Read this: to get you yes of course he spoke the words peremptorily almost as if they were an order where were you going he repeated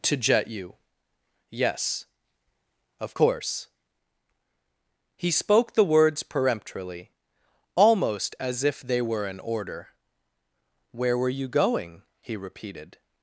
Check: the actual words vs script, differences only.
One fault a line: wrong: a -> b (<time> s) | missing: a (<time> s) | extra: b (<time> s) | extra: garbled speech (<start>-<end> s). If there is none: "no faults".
wrong: get -> jet (0.2 s)